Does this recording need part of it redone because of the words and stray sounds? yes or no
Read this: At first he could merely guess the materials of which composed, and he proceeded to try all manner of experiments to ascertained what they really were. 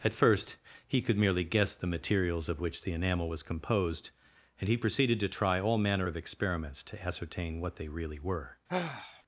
yes